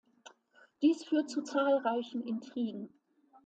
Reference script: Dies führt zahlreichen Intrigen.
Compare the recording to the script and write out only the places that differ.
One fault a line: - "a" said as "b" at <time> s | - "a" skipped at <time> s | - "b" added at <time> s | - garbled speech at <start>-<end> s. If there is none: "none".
- "zu" added at 1.3 s